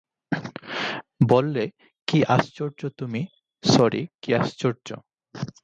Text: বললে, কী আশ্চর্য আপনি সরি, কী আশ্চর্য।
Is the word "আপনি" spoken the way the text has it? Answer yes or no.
no